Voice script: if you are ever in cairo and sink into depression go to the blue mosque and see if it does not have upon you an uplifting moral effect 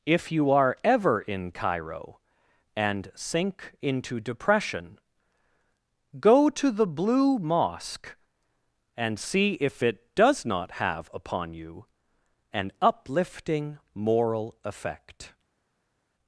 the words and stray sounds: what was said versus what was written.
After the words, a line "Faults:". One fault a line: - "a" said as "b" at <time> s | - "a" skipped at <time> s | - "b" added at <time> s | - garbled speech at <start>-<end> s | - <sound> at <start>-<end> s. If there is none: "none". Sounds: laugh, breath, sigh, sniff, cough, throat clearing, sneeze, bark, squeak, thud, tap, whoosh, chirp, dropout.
if you are ever in cairo and sink into depression go to the blue mosque and see if it does not have upon you an uplifting moral effect
Faults:
none